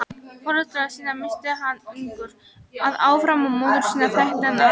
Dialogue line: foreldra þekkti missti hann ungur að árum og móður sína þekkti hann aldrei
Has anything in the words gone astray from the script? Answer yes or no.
yes